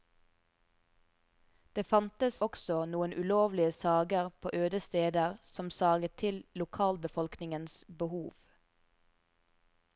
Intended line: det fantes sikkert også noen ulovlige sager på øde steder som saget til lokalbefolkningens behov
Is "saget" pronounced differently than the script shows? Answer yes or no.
no